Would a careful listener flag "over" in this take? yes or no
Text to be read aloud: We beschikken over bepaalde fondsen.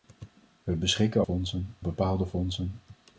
yes